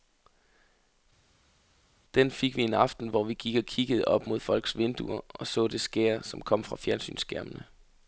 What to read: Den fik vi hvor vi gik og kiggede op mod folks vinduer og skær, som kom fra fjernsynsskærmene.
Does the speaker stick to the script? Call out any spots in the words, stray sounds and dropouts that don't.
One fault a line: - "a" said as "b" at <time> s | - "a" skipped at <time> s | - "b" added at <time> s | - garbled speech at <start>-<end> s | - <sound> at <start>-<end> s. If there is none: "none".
- "en aften" added at 2.6 s
- "så det" added at 5.5 s